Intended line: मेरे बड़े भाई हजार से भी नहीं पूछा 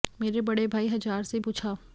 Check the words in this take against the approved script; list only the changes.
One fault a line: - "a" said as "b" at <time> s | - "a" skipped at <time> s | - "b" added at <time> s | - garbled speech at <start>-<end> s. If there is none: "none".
- "भी नहीं" skipped at 1.4 s